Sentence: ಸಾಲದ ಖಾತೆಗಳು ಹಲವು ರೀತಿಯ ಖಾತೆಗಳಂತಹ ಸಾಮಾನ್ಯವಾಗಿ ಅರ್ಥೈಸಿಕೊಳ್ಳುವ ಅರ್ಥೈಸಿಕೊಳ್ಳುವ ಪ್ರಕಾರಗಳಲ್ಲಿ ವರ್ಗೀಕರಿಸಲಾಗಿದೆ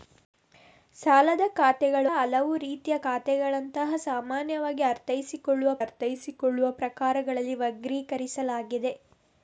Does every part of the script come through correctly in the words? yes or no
yes